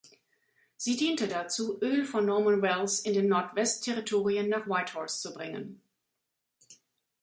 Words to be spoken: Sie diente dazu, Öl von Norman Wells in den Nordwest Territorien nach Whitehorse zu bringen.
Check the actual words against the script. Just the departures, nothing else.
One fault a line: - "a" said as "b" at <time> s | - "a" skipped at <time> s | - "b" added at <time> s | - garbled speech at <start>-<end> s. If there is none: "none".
none